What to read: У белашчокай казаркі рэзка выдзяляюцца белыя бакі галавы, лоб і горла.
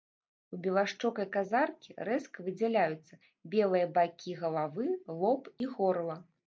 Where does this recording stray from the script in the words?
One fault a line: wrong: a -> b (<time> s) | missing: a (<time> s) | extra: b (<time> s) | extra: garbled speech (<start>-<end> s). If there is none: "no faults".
no faults